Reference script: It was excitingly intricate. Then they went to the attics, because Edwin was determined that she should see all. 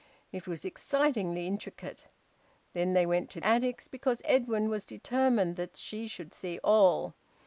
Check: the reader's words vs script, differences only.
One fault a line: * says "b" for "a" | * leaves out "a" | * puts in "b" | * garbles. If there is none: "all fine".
* leaves out "the"